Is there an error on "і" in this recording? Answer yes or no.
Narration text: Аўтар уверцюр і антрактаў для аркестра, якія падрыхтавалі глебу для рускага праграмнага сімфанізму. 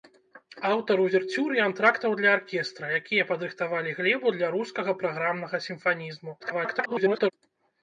no